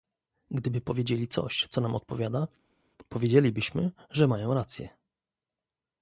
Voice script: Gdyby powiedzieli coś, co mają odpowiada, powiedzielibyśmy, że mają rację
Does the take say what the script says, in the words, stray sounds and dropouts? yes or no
no